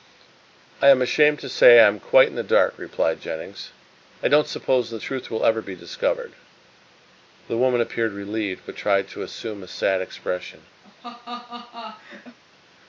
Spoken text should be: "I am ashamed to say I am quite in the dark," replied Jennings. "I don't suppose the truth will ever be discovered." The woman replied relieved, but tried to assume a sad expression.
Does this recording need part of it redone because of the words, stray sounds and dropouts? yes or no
yes